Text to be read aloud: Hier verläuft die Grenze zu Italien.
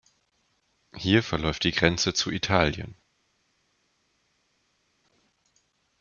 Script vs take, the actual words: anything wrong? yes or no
no